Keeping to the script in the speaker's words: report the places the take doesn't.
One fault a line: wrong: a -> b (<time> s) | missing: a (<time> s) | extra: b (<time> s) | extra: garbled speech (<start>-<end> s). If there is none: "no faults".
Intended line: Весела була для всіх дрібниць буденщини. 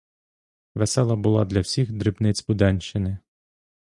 no faults